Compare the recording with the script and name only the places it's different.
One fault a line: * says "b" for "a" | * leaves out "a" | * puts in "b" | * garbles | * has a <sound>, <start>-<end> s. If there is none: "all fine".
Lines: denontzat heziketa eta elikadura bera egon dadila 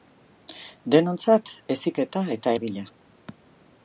* leaves out "elikadura bera egon"